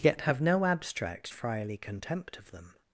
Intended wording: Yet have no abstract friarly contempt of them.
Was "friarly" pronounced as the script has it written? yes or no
yes